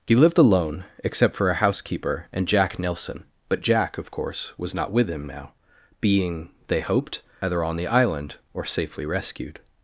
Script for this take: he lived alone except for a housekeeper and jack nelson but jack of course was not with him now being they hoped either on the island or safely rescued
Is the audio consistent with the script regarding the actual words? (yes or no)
yes